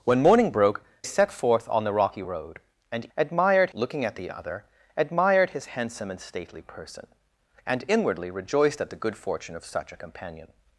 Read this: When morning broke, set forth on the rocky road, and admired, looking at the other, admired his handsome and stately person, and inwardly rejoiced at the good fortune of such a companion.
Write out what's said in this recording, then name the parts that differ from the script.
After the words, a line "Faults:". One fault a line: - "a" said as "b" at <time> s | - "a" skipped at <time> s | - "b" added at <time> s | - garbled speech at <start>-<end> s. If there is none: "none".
When morning broke, set forth on the rocky road, and admired, looking at the other, admired his handsome and stately person, and inwardly rejoiced at the good fortune of such a companion.
Faults:
none